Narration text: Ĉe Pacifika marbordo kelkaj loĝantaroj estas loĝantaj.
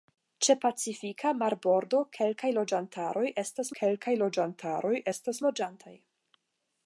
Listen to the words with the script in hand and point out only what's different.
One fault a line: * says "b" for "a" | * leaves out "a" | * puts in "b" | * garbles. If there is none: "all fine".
* puts in "kelkaj loĝantaroj estas"